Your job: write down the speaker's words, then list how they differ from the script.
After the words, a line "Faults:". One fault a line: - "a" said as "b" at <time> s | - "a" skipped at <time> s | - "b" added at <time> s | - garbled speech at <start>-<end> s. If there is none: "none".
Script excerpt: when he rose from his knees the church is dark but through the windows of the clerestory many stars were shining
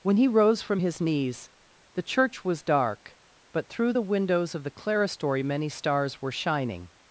when he rose from his knees the church was dark but through the windows of the clerestory many stars were shining
Faults:
- "is" said as "was" at 2.4 s